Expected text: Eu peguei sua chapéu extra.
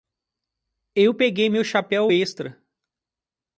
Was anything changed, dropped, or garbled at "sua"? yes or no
yes